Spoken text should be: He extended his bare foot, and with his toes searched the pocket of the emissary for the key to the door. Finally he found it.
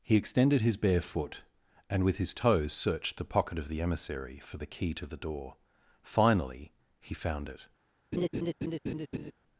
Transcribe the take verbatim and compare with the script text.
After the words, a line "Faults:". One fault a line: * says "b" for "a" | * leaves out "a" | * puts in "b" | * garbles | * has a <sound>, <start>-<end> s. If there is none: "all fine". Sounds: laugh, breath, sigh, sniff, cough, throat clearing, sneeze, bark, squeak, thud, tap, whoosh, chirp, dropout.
He extended his bare foot, and with his toes searched the pocket of the emissary for the key to the door. Finally he found it.
Faults:
* has a laugh, 8.1-9.3 s